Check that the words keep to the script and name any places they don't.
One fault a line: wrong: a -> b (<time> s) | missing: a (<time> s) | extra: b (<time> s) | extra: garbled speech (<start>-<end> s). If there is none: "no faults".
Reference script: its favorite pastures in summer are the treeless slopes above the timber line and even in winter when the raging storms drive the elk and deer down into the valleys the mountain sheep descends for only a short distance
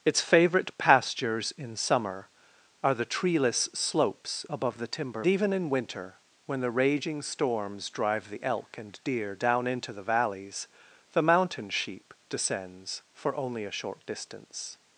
missing: line and (5.2 s)